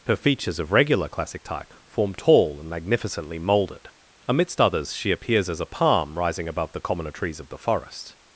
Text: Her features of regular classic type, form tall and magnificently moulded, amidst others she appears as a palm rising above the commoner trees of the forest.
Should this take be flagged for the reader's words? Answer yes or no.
no